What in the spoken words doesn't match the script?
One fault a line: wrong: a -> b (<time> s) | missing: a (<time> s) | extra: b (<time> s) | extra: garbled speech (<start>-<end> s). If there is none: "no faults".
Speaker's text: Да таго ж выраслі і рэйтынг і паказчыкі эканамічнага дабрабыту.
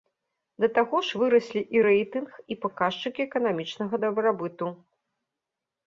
no faults